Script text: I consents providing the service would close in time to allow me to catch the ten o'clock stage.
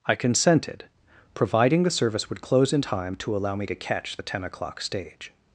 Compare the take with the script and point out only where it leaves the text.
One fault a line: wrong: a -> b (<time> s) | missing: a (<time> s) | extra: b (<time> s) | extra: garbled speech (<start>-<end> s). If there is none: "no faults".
wrong: consents -> consented (0.1 s)